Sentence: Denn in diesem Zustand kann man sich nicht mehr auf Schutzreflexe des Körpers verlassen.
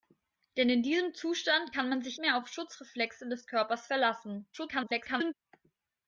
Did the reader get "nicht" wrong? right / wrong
wrong